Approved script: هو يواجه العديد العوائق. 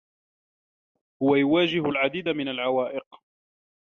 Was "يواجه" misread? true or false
false